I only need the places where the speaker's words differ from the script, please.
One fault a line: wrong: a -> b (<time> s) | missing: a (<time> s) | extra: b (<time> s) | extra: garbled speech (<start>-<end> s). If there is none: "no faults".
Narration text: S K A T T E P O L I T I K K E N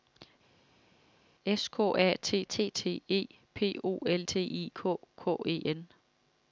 extra: T (2.7 s)
missing: I (4.3 s)